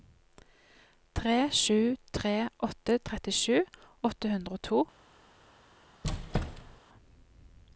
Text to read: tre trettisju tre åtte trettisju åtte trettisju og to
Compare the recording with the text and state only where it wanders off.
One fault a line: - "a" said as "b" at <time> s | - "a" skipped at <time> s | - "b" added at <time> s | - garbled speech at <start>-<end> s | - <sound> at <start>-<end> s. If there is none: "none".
- "trettisju" said as "sju" at 1.6 s
- "trettisju" said as "hundre" at 4.3 s
- squeak at 6.0-6.8 s